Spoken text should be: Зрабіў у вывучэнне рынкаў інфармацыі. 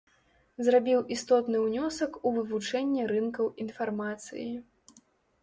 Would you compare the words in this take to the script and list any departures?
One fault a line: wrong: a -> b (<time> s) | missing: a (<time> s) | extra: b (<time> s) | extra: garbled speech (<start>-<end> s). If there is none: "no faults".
extra: істотны ўнёсак (1.1 s)